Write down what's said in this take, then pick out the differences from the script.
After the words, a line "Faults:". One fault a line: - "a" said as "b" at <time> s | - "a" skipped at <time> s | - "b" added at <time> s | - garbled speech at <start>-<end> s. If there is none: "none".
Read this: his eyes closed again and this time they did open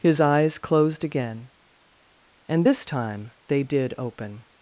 his eyes closed again and this time they did open
Faults:
none